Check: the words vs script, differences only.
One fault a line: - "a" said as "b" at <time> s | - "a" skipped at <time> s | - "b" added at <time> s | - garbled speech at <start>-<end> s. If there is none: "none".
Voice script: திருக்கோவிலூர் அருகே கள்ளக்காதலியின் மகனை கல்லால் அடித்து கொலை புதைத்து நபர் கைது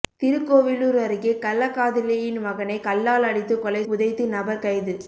none